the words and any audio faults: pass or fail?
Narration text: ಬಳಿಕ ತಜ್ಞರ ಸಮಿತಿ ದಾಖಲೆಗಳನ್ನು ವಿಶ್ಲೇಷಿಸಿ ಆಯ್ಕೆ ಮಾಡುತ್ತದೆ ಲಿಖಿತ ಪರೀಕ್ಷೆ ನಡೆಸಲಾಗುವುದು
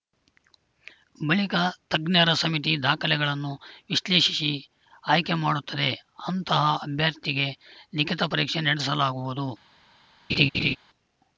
fail